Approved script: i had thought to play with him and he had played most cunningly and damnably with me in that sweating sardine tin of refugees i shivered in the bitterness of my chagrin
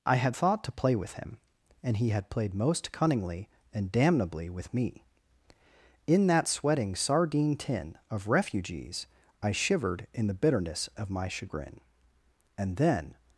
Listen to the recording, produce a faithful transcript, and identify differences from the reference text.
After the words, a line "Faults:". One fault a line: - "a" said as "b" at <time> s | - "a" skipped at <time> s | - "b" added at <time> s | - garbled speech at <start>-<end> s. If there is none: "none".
i had thought to play with him and he had played most cunningly and damnably with me in that sweating sardine tin of refugees i shivered in the bitterness of my chagrin and then
Faults:
- "and then" added at 12.6 s